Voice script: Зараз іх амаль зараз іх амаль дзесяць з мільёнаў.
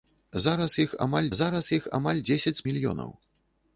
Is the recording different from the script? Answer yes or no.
no